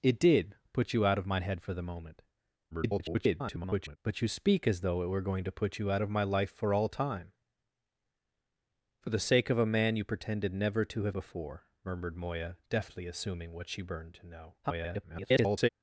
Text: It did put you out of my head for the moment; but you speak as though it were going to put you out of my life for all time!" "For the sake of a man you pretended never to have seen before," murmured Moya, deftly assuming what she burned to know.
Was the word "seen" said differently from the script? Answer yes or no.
yes